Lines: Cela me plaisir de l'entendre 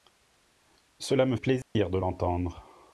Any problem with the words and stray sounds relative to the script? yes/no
yes